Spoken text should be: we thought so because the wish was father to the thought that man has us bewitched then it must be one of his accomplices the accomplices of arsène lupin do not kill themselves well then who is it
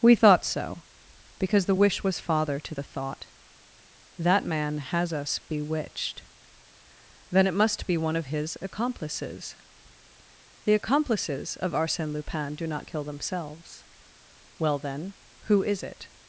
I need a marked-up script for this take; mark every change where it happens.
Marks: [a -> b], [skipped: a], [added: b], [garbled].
we thought so because the wish was father to the thought that man has us bewitched then it must be one of his accomplices the accomplices of arsène lupin do not kill themselves well then who is it